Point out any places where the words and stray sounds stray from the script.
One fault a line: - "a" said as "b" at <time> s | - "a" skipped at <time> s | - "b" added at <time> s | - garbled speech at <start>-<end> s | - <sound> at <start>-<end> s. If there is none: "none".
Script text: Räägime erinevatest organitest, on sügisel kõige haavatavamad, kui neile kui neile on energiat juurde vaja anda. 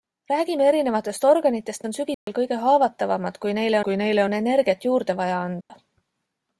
- dropout at 2.1-2.3 s
- dropout at 5.6-5.7 s